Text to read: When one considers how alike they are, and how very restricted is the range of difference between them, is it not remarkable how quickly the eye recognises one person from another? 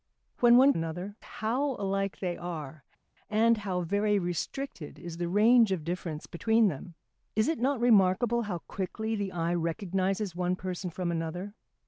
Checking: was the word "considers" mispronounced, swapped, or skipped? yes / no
yes